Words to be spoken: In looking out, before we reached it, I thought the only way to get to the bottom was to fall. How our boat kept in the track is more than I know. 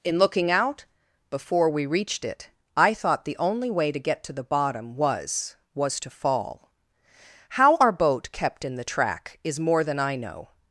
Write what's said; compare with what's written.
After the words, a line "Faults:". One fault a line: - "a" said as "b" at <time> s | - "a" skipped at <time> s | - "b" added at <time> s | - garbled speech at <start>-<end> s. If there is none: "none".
In looking out, before we reached it, I thought the only way to get to the bottom was was to fall. How our boat kept in the track is more than I know.
Faults:
- "was" added at 5.7 s